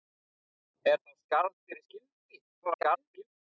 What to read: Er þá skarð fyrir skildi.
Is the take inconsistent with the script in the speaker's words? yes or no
yes